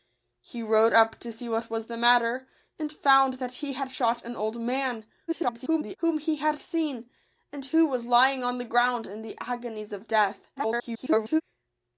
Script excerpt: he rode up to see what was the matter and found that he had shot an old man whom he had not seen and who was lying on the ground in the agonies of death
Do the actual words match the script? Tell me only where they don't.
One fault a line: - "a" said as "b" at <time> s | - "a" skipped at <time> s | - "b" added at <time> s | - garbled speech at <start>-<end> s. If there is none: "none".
- garbled speech at 5.3-6.0 s
- "not" skipped at 6.6 s
- garbled speech at 10.6-11.4 s